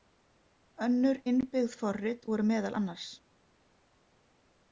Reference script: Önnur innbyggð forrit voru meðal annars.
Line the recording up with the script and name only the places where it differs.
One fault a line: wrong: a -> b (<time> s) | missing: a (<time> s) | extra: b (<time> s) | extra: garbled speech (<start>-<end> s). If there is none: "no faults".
no faults